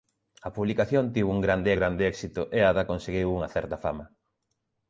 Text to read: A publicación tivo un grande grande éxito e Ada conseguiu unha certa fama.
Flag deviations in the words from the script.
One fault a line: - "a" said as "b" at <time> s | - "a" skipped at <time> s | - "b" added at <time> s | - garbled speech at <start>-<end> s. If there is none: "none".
none